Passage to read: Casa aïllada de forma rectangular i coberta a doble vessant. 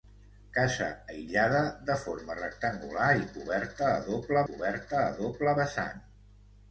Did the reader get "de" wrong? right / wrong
right